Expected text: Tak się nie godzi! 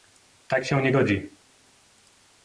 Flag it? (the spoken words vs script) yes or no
no